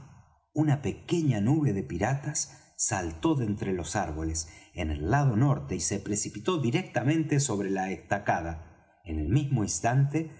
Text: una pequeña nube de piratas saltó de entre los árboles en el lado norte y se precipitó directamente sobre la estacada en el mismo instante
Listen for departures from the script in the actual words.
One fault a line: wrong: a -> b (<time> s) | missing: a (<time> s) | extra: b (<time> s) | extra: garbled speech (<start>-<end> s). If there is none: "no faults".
no faults